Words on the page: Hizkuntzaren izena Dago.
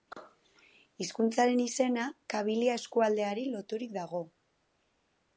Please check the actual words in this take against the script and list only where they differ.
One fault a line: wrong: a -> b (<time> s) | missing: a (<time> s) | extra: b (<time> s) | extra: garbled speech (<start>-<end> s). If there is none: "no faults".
extra: Kabilia eskualdeari loturik (2.4 s)